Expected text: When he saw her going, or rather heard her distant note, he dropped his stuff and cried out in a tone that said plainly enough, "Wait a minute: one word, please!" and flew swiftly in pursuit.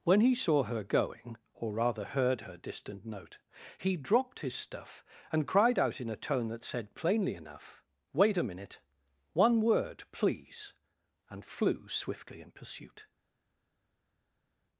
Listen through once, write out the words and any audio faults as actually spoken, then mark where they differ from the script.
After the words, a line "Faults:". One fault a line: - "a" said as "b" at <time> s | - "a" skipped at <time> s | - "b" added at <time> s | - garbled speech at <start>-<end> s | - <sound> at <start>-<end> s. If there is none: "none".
When he saw her going, or rather heard her distant note, he dropped his stuff and cried out in a tone that said plainly enough, "Wait a minute: one word, please!" and flew swiftly in pursuit.
Faults:
none